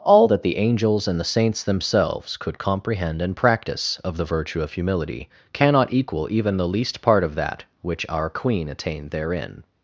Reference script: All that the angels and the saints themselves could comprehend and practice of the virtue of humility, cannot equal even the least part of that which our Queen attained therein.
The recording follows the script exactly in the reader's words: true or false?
true